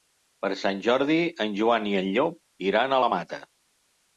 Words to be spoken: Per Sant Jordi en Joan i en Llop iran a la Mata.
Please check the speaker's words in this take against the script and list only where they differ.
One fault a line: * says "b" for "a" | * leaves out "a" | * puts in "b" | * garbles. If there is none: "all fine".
all fine